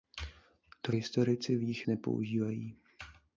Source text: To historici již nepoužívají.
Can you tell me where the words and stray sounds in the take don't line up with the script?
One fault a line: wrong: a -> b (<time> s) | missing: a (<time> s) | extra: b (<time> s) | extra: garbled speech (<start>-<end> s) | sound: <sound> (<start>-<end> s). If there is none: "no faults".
no faults